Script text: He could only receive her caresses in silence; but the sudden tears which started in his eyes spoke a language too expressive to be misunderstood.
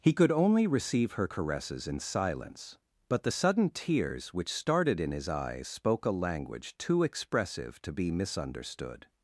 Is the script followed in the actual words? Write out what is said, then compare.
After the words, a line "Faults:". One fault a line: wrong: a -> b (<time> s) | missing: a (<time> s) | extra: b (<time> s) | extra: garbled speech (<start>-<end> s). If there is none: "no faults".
He could only receive her caresses in silence; but the sudden tears which started in his eyes spoke a language too expressive to be misunderstood.
Faults:
no faults